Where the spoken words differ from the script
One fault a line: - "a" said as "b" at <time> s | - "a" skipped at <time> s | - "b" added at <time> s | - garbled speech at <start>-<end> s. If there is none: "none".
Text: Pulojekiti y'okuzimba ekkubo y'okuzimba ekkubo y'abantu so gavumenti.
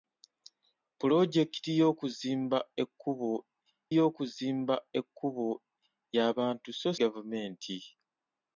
none